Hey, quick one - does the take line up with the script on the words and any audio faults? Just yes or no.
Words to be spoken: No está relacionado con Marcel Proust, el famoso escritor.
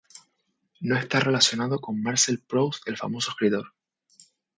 yes